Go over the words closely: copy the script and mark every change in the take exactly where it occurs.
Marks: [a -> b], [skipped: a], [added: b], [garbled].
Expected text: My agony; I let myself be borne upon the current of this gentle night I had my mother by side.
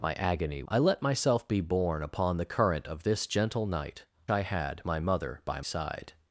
My agony; I let myself be borne upon the current of this gentle night I had my mother by side.